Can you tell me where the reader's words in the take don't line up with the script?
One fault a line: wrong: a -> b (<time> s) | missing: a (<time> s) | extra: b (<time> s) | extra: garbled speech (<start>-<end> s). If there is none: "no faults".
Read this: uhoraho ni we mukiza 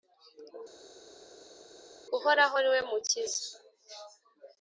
no faults